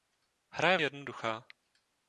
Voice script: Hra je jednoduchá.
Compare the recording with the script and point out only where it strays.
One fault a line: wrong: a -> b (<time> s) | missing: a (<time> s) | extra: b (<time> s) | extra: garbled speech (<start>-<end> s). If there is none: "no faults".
no faults